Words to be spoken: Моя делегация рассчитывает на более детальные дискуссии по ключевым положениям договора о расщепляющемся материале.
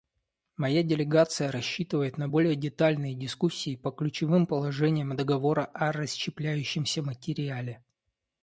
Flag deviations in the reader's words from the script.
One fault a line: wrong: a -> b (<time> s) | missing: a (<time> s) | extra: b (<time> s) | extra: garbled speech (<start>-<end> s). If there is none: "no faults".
no faults